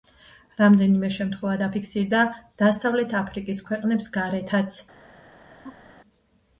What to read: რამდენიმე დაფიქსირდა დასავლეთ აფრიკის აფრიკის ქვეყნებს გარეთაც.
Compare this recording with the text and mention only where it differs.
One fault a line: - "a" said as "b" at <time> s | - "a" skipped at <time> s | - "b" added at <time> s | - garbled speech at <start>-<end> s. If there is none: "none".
- "შემთხვევა" added at 1.2 s
- "აფრიკის" skipped at 3.6 s